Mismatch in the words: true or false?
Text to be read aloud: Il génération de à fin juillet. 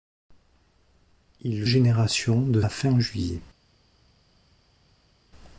false